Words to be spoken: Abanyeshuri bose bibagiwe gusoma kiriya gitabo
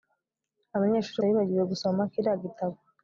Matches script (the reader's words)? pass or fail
fail